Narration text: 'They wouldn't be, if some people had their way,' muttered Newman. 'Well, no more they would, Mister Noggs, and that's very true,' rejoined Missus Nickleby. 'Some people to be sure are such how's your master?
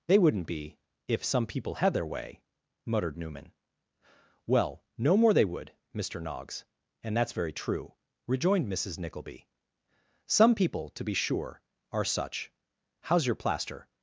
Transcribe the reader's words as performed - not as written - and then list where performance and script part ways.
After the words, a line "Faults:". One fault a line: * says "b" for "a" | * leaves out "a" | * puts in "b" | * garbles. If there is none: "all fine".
'They wouldn't be, if some people had their way,' muttered Newman. 'Well, no more they would, Mister Noggs, and that's very true,' rejoined Missus Nickleby. 'Some people to be sure are such how's your plaster?
Faults:
* says "plaster" for "master"